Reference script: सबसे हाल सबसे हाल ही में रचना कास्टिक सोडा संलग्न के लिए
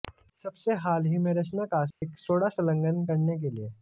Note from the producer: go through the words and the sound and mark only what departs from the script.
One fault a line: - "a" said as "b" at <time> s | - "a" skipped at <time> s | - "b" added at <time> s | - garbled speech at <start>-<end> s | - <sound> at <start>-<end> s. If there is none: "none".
- "सबसे हाल" skipped at 1.1 s
- dropout at 1.9-2.0 s
- "करने" added at 3.0 s